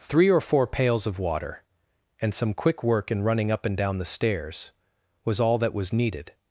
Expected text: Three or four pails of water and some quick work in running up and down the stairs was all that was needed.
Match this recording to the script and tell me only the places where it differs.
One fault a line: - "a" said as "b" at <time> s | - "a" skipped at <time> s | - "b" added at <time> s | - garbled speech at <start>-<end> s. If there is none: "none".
none